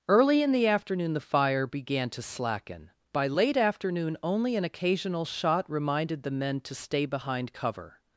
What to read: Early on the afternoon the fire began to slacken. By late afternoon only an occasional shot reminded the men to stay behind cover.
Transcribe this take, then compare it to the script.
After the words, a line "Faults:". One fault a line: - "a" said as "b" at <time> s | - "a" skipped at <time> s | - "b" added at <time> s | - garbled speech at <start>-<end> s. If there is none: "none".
Early in the afternoon the fire began to slacken. By late afternoon only an occasional shot reminded the men to stay behind cover.
Faults:
- "on" said as "in" at 0.4 s